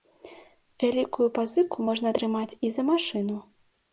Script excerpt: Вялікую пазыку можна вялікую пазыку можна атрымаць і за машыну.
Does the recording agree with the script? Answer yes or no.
no